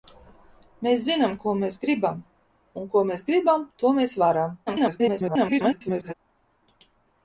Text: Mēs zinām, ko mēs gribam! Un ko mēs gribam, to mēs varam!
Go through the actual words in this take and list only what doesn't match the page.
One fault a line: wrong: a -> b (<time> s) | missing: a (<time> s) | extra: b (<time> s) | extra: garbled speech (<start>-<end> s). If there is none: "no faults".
extra: garbled speech (4.7-6.1 s)